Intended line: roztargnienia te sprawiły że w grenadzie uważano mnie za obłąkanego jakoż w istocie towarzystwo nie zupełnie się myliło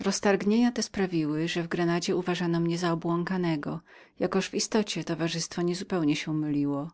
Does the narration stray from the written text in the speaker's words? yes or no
no